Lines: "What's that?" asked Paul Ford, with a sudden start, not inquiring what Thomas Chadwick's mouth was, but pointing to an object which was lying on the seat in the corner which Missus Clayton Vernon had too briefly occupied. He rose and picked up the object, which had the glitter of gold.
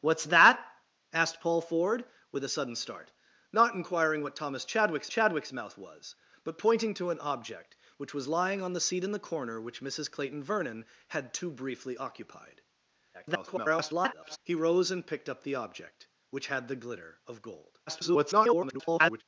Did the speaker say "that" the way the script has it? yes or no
yes